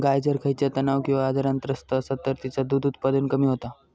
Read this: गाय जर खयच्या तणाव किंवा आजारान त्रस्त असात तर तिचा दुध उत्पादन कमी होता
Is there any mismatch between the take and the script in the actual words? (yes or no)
no